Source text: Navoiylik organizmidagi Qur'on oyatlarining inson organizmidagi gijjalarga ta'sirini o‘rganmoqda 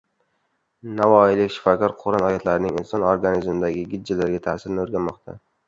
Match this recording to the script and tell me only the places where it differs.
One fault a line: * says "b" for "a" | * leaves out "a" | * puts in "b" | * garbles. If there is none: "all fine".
* says "shifokor" for "organizmidagi"